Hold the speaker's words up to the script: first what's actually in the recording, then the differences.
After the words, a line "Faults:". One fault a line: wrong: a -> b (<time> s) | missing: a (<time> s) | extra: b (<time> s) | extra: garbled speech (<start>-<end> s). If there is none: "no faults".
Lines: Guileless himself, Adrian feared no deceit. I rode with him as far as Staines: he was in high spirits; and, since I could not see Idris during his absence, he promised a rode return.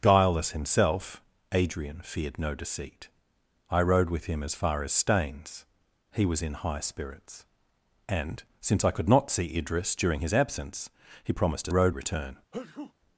Guileless himself, Adrian feared no deceit. I rode with him as far as Staines: he was in high spirits; and, since I could not see Idris during his absence, he promised a rode return.
Faults:
no faults